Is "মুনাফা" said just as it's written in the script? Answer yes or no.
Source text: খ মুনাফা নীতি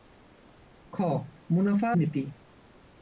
yes